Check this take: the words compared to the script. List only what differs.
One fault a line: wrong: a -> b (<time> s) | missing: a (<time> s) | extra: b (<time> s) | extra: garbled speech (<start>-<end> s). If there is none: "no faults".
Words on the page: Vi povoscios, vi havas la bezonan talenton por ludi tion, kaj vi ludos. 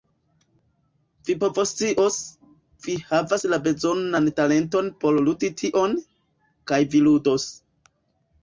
no faults